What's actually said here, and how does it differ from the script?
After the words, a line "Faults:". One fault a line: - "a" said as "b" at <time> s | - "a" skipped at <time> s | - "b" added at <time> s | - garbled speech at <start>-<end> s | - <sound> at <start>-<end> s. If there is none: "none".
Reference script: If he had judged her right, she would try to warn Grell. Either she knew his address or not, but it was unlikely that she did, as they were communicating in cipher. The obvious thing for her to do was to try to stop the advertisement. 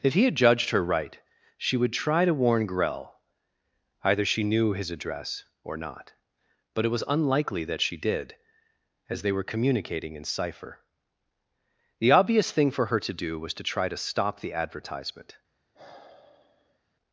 If he had judged her right, she would try to warn Grell. Either she knew his address or not, but it was unlikely that she did, as they were communicating in cipher. The obvious thing for her to do was to try to stop the advertisement.
Faults:
- sigh at 15.7-16.8 s